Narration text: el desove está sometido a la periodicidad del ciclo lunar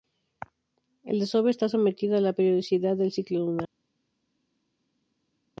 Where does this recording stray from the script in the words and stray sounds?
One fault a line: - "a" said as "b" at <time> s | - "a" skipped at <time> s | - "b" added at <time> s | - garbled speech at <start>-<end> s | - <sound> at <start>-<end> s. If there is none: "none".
none